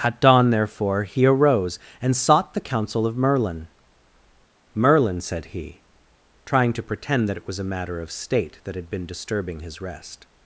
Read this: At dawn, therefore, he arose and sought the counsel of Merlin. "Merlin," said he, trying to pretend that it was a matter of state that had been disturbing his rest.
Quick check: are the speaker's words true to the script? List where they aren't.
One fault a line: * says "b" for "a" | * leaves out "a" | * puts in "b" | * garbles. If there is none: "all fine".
all fine